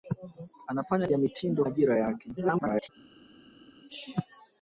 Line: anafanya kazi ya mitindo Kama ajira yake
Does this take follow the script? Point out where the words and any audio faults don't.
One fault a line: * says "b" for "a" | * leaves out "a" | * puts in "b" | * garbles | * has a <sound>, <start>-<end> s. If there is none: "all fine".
* leaves out "kazi"
* leaves out "Kama"
* garbles